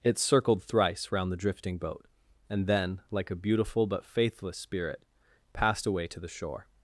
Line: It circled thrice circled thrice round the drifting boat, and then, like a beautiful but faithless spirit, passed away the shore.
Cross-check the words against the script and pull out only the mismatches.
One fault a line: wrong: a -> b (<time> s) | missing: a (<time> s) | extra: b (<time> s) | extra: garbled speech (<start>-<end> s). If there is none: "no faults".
missing: circled thrice (1.1 s)
extra: to (6.1 s)